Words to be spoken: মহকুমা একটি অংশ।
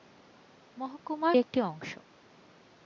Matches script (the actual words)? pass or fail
pass